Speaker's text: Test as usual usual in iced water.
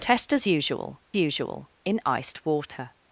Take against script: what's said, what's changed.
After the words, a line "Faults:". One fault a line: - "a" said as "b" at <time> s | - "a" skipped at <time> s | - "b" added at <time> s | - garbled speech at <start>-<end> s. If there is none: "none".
Test as usual usual in iced water.
Faults:
none